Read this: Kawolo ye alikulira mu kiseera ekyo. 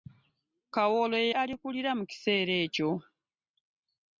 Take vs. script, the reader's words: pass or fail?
pass